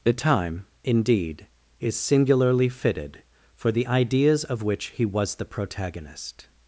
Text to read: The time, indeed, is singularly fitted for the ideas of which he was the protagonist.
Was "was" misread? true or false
false